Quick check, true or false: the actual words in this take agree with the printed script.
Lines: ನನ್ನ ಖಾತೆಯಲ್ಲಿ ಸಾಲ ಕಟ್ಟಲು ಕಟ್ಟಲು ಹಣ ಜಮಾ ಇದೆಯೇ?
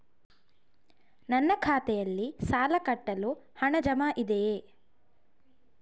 false